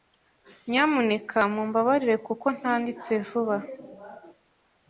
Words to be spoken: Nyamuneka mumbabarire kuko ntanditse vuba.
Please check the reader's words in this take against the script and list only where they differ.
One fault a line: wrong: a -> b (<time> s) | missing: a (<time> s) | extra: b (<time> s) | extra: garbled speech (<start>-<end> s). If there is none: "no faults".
no faults